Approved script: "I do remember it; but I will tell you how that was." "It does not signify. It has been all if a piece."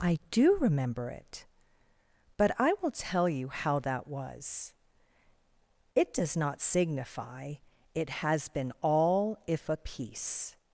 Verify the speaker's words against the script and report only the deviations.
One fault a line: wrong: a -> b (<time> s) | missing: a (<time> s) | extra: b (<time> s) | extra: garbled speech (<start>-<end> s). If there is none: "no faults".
no faults